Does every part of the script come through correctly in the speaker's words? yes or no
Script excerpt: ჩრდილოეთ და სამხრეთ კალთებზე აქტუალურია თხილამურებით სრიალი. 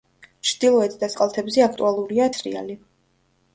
no